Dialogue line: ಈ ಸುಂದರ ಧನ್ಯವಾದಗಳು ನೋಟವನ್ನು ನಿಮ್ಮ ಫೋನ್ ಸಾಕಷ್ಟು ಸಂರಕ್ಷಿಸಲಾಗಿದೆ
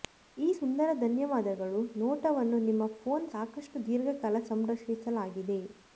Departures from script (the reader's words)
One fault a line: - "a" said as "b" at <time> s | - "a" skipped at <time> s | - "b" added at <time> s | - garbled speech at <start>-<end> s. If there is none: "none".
- "ದೀರ್ಘಕಾಲ" added at 3.9 s